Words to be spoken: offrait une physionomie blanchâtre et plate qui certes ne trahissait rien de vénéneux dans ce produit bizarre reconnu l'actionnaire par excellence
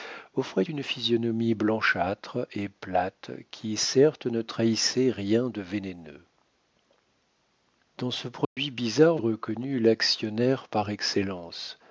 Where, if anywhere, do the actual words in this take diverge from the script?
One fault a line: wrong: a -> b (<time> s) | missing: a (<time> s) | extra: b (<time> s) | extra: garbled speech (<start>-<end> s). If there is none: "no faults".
no faults